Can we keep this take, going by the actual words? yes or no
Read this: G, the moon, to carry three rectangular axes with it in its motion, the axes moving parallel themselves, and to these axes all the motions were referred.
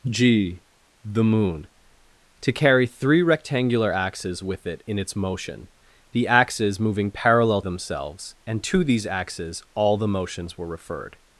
yes